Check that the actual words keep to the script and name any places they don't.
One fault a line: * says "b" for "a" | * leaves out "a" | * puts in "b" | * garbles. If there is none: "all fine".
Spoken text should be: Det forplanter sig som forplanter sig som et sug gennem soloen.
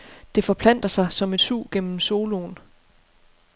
* leaves out "forplanter sig som"